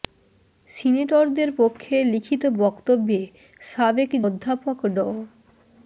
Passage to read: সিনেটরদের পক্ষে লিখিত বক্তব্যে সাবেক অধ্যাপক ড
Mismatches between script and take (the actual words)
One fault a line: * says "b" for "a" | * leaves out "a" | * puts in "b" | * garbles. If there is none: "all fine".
all fine